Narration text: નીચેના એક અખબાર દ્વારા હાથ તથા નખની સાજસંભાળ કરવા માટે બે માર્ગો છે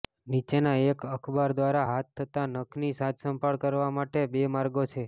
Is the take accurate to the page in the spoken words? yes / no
yes